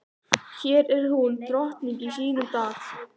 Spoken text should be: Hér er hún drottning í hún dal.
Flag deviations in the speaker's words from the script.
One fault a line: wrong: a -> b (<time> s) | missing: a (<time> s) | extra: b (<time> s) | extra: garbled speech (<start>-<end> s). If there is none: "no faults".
wrong: hún -> sínum (2.1 s)